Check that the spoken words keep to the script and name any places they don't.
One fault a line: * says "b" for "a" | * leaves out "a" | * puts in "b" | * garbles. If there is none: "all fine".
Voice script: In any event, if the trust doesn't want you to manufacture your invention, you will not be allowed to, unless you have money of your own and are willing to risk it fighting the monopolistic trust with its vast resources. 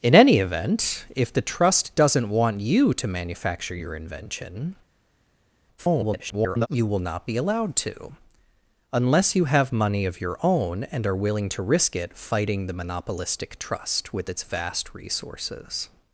* garbles